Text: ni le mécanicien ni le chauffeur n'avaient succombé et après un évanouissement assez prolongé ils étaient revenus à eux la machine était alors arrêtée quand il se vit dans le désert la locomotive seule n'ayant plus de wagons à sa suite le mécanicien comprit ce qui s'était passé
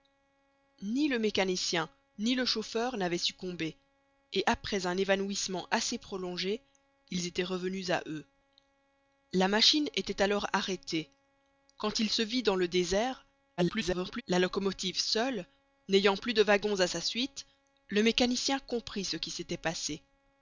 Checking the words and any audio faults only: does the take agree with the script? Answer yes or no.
no